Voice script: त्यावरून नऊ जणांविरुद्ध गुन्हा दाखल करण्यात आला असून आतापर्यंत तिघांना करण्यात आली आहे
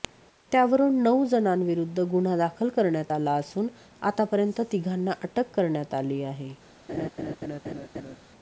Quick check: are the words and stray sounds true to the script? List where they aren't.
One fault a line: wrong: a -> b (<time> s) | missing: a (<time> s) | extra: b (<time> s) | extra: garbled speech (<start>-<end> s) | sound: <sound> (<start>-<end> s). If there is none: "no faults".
extra: अटक (5.2 s)
sound: laugh (6.9-8.2 s)